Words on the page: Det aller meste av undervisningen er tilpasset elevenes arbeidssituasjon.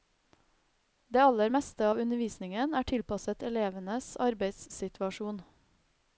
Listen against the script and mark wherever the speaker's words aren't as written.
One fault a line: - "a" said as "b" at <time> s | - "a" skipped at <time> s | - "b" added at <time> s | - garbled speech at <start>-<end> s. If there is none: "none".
none